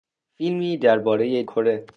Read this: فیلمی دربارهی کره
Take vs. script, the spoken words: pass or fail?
pass